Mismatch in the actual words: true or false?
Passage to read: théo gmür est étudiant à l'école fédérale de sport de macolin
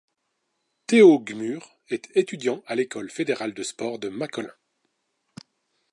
false